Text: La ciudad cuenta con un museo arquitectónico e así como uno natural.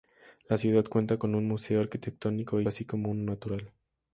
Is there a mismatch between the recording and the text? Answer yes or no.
no